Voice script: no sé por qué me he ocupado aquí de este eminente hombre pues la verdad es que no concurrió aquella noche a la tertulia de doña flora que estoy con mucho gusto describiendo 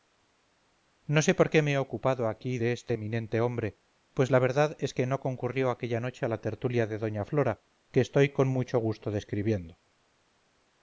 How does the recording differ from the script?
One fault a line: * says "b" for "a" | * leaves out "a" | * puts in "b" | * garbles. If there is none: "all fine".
all fine